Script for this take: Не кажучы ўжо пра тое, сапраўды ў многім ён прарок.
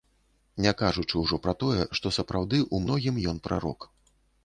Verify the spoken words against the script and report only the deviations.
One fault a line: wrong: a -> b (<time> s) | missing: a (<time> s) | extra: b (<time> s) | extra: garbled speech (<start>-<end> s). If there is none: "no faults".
extra: што (2.0 s)